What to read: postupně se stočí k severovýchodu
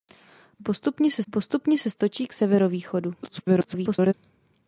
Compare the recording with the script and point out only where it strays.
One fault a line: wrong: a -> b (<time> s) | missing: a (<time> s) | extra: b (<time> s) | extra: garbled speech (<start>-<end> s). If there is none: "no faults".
extra: postupně se (1.3 s)
extra: garbled speech (3.2-4.1 s)